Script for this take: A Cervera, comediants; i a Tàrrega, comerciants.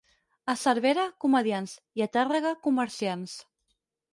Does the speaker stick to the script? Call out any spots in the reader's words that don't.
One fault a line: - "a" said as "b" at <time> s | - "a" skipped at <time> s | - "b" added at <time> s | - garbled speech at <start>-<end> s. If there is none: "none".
none